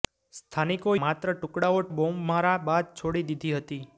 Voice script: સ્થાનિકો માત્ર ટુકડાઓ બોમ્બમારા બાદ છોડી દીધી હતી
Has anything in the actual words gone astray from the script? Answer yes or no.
no